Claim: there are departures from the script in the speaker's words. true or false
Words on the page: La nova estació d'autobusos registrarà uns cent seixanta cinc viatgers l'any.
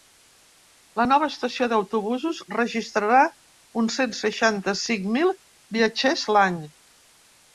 true